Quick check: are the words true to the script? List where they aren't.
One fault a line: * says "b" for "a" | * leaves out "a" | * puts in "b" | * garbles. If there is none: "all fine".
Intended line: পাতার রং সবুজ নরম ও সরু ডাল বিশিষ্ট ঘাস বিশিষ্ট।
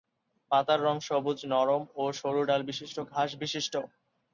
all fine